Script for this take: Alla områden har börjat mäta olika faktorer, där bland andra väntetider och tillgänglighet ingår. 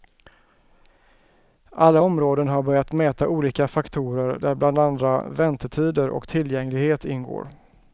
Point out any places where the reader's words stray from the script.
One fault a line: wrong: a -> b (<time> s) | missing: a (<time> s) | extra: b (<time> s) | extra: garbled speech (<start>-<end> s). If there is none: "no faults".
no faults